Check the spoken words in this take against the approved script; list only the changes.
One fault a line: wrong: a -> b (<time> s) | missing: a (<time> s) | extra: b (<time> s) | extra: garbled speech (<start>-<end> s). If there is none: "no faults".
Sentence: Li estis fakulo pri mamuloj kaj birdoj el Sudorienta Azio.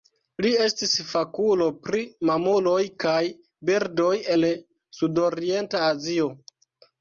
no faults